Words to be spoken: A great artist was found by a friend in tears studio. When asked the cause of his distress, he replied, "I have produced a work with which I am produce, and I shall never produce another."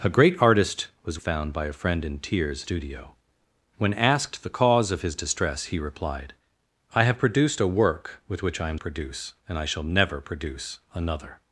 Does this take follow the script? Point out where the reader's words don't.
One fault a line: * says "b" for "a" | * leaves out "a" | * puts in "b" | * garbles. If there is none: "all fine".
all fine